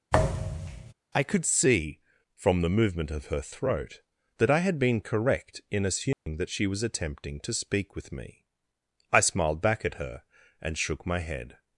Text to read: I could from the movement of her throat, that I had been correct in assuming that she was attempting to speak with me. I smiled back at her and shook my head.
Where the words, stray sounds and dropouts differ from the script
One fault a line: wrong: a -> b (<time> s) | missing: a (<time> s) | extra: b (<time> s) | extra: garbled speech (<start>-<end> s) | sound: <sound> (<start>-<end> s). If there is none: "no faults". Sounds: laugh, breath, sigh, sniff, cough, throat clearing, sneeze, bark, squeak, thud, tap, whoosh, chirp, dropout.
sound: thud (0.1-0.9 s)
extra: see (1.5 s)
sound: dropout (6.1-6.3 s)